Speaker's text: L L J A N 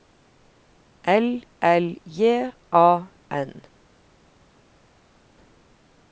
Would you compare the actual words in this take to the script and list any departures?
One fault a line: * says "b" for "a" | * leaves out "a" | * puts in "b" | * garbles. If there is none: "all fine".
all fine